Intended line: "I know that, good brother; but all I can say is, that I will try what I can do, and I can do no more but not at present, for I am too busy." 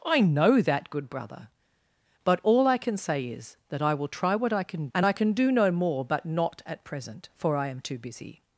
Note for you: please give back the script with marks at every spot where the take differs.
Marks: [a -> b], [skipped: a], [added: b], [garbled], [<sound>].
"I know that, good brother; but all I can say is, that I will try what I can [skipped: do,] and I can do no more but not at present, for I am too busy."